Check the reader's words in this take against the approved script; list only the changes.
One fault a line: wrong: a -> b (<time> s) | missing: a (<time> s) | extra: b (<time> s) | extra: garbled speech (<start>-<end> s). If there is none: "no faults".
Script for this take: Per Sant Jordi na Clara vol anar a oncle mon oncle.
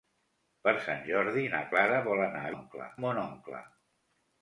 no faults